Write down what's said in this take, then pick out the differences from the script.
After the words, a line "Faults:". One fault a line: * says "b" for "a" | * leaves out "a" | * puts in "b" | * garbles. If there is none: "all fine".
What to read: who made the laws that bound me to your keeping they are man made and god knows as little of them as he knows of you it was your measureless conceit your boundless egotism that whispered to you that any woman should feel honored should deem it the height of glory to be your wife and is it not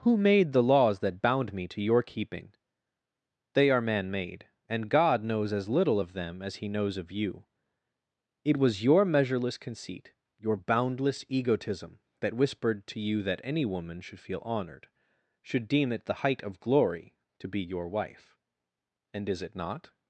who made the laws that bound me to your keeping they are man made and god knows as little of them as he knows of you it was your measureless conceit your boundless egotism that whispered to you that any woman should feel honored should deem it the height of glory to be your wife and is it not
Faults:
all fine